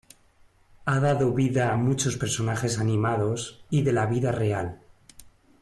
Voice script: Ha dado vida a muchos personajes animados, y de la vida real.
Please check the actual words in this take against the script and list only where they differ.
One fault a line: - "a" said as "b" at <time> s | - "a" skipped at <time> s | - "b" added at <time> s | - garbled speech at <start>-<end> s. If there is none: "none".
none